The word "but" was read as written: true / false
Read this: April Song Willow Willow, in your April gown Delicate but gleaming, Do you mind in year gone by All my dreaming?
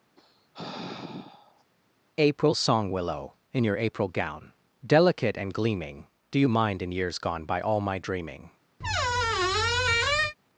false